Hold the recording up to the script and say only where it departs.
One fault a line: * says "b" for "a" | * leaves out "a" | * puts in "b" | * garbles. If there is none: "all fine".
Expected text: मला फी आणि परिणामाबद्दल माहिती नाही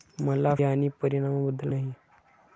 * leaves out "फी"
* leaves out "माहिती"